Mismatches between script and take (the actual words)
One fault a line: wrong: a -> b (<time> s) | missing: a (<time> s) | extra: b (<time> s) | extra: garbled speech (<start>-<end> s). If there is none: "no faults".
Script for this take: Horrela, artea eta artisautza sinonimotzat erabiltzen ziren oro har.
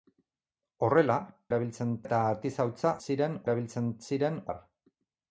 wrong: artea -> erabiltzen (1.5 s)
wrong: sinonimotzat -> ziren (3.1 s)
missing: oro (4.4 s)